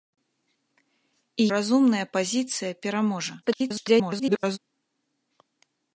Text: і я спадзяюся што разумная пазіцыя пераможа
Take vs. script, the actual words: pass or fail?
fail